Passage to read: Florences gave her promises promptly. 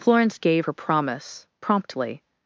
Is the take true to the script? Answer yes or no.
no